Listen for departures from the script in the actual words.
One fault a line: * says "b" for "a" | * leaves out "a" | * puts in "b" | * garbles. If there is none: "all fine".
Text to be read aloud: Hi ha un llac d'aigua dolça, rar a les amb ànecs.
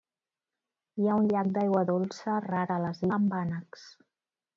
all fine